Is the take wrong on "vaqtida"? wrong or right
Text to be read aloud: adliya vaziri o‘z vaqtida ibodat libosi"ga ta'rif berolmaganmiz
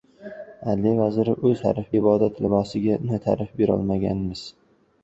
wrong